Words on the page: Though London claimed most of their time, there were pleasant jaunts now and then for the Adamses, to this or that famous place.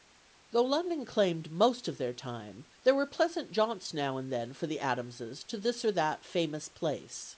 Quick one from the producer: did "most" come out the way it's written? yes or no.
yes